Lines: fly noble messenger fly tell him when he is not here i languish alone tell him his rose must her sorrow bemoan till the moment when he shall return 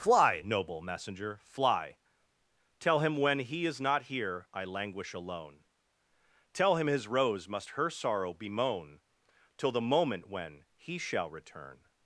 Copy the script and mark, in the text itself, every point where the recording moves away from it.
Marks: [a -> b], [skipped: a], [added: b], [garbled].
fly noble messenger fly tell him when he is not here i languish alone tell him his rose must her sorrow bemoan till the moment when he shall return